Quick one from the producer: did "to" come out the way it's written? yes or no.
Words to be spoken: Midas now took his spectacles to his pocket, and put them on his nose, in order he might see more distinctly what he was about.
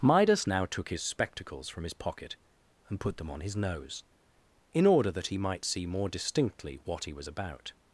no